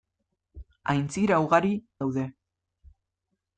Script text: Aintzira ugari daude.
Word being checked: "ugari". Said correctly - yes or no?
yes